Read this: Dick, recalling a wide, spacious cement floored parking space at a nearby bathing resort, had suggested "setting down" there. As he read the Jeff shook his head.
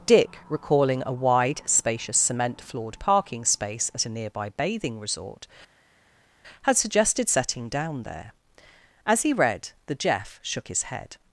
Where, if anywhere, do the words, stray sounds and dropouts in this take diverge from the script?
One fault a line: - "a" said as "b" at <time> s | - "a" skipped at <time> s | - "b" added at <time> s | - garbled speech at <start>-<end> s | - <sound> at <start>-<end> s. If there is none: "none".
none